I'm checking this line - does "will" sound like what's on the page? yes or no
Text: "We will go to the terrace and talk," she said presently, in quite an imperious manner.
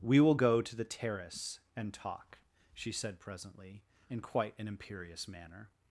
yes